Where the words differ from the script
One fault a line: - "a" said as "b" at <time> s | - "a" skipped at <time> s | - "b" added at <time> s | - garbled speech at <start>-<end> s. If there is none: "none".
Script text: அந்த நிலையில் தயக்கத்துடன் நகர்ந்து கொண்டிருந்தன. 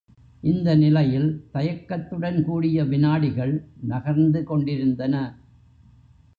- "அந்த" said as "இந்த" at 0.4 s
- "கூடிய விநாடிகள்" added at 2.4 s